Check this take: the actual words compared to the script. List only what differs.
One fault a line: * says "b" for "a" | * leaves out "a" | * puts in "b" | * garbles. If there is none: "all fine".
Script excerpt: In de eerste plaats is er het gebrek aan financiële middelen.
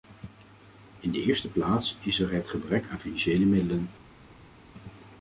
all fine